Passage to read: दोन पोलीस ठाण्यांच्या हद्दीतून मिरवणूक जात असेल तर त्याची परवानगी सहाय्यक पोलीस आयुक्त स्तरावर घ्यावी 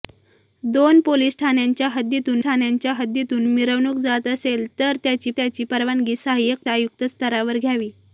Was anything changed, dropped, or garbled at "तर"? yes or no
no